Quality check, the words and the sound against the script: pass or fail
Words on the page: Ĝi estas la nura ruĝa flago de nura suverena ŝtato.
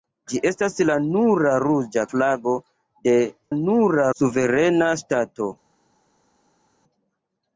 pass